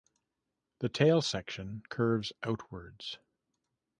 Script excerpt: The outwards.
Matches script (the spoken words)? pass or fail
fail